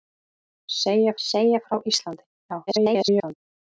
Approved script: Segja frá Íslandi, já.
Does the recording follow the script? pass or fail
fail